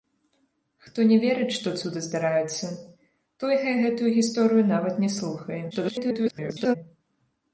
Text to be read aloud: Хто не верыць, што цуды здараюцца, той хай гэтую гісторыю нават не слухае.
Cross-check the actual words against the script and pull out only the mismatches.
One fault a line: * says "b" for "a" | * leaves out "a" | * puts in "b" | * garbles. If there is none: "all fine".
* garbles